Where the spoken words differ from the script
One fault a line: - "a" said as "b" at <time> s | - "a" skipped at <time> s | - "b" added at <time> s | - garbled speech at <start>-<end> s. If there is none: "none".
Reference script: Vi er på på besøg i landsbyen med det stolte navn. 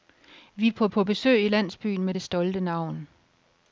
none